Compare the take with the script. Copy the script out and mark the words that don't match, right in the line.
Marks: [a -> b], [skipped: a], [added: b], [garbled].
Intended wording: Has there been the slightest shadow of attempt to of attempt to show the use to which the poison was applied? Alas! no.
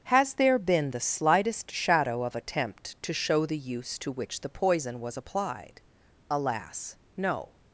Has there been the slightest shadow of attempt to [skipped: of attempt to] show the use to which the poison was applied? Alas! no.